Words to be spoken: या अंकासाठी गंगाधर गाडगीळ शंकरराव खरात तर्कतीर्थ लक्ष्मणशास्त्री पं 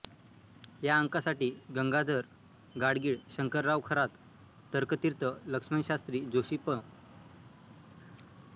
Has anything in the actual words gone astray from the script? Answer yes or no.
yes